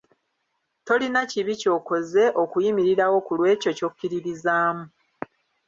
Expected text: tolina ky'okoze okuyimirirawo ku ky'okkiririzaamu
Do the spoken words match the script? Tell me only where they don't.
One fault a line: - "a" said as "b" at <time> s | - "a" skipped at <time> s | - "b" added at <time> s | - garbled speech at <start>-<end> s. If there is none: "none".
- "kibi" added at 1.3 s
- "lw'ekyo" added at 3.4 s